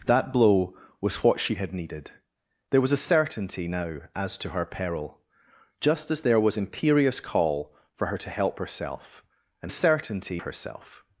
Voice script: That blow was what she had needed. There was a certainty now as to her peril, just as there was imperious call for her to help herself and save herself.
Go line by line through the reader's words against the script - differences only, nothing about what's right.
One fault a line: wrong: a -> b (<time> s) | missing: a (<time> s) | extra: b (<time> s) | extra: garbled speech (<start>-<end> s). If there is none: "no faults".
wrong: save -> certainty (9.7 s)